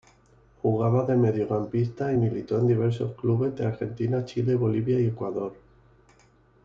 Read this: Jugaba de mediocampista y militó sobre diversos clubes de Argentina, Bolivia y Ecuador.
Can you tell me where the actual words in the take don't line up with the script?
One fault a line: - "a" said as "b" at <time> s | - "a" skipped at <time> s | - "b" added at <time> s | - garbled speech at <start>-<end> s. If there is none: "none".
- "sobre" said as "en" at 2.6 s
- "Chile" added at 4.2 s